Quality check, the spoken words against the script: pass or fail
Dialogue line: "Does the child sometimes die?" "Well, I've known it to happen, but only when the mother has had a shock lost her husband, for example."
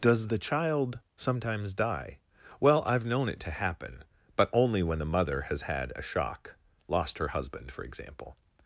pass